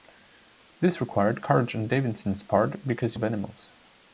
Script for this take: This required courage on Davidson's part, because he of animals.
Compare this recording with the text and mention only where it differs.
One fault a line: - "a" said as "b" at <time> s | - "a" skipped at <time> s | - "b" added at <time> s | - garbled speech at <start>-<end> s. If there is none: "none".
none